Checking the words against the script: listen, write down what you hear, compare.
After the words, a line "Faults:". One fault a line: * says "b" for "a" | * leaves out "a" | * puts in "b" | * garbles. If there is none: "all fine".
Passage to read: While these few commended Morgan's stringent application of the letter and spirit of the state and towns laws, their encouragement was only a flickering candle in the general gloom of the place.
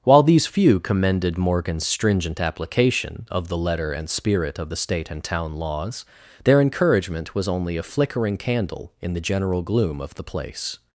While these few commended Morgan's stringent application of the letter and spirit of the state and town laws, their encouragement was only a flickering candle in the general gloom of the place.
Faults:
* says "town" for "towns"